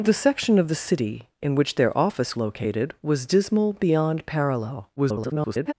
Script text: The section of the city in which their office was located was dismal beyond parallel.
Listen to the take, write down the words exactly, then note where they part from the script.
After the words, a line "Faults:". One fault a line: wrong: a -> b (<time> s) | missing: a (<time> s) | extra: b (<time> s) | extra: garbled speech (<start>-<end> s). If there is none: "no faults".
The section of the city in which their office located was dismal beyond parallel. [garbled]
Faults:
missing: was (2.4 s)
extra: garbled speech (5.0-5.7 s)